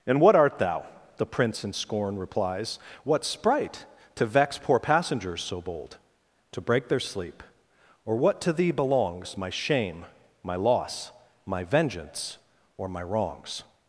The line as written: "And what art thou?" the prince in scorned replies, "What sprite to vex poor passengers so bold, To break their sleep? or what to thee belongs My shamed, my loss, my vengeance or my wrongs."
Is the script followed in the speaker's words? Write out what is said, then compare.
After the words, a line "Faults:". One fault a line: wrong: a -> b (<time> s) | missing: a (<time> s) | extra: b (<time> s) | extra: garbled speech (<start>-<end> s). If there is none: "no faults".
"And what art thou?" the prince in scorn replies, "What sprite to vex poor passengers so bold, To break their sleep? or what to thee belongs My shame, my loss, my vengeance or my wrongs."
Faults:
wrong: scorned -> scorn (1.7 s)
wrong: shamed -> shame (9.5 s)